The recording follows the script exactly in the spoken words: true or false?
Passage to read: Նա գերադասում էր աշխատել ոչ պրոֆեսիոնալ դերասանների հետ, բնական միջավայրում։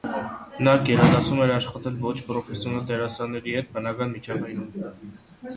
true